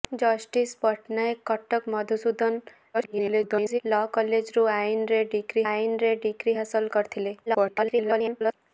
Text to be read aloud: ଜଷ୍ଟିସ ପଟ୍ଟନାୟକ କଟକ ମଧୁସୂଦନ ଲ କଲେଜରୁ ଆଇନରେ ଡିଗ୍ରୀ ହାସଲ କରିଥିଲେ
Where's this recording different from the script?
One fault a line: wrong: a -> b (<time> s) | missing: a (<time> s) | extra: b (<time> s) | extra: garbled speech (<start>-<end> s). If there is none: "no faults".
extra: garbled speech (2.9-3.8 s)
extra: ଆଇନରେ ଡିଗ୍ରୀ (5.7 s)
extra: garbled speech (7.5-8.5 s)